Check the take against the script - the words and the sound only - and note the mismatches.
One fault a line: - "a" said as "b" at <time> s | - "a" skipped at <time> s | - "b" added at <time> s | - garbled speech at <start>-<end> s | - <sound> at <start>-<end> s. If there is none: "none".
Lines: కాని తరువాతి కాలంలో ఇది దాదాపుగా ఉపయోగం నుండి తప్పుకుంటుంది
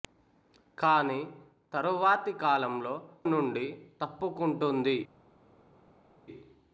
- "ఇది దాదాపుగా ఉపయోగం" skipped at 3.0 s